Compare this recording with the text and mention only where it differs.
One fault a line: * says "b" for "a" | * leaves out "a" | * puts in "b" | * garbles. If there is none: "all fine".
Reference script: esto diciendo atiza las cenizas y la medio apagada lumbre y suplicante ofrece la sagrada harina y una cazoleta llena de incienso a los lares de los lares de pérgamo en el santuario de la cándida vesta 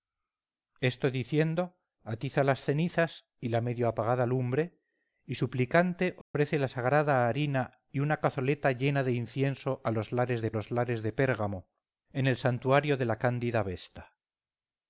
all fine